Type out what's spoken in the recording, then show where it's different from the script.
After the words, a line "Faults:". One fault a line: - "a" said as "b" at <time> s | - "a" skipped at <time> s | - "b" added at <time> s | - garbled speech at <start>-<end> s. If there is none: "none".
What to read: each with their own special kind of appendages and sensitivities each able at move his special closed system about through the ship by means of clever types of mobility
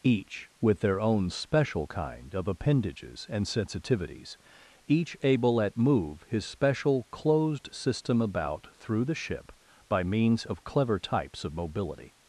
each with their own special kind of appendages and sensitivities each able at move his special closed system about through the ship by means of clever types of mobility
Faults:
none